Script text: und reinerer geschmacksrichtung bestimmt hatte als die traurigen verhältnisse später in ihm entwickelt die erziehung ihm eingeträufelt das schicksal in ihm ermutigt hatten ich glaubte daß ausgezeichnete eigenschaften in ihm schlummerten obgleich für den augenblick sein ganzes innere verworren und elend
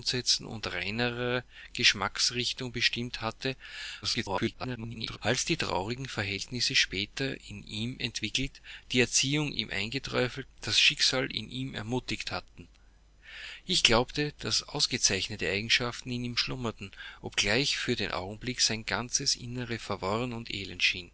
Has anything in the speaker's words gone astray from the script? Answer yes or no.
yes